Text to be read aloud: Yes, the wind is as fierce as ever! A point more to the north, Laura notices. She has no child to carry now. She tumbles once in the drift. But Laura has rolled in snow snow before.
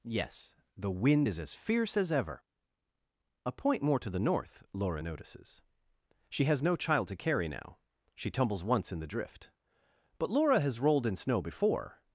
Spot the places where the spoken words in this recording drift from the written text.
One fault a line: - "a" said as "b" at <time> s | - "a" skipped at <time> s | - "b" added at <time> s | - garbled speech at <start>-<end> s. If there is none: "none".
- "snow" skipped at 11.4 s